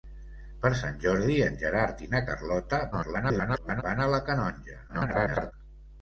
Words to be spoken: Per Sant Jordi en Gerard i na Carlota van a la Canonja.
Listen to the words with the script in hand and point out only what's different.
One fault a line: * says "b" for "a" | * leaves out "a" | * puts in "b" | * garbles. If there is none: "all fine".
* garbles
* garbles